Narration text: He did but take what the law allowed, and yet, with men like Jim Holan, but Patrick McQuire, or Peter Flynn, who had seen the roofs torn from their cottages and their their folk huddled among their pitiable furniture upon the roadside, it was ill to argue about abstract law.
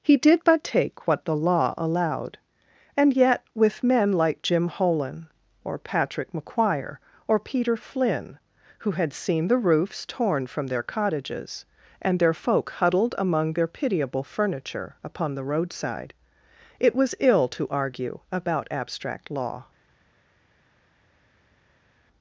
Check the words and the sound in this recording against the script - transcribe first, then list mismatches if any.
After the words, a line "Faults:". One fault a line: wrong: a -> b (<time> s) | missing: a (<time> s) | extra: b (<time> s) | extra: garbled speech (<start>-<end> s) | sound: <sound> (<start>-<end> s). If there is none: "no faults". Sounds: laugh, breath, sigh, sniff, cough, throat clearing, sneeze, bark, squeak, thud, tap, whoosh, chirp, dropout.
He did but take what the law allowed, and yet, with men like Jim Holan, or Patrick McQuire, or Peter Flynn, who had seen the roofs torn from their cottages and their folk huddled among their pitiable furniture upon the roadside, it was ill to argue about abstract law.
Faults:
wrong: but -> or (5.6 s)
missing: their (12.3 s)